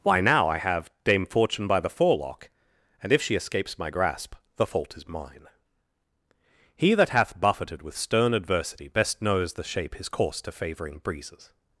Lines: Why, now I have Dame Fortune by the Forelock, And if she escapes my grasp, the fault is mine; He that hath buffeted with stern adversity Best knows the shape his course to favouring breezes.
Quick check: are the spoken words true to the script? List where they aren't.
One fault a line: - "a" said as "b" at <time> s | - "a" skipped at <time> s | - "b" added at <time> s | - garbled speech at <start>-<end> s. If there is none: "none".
none